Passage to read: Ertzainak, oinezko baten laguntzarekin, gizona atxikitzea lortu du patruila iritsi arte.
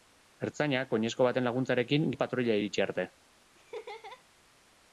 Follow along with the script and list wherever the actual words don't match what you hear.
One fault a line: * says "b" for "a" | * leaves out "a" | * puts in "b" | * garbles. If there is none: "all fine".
* leaves out "gizona atxikitzea lortu"